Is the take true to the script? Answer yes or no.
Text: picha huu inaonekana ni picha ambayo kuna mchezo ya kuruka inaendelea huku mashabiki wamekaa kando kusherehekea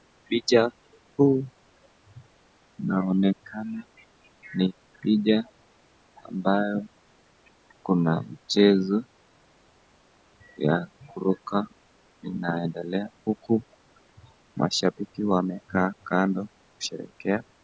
yes